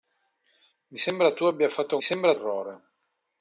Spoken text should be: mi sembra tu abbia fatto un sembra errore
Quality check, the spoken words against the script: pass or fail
pass